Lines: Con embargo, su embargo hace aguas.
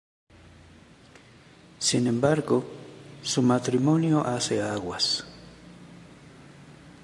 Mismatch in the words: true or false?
true